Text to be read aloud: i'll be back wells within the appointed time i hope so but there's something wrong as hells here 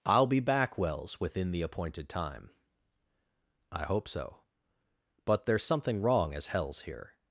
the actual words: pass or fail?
pass